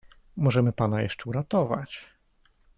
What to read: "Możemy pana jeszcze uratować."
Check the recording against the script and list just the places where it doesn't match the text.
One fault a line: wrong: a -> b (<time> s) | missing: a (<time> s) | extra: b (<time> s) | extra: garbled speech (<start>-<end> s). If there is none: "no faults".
no faults